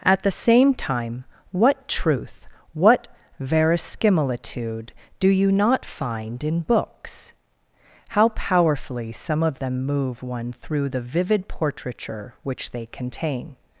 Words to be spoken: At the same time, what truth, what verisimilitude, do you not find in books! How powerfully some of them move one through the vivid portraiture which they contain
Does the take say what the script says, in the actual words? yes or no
yes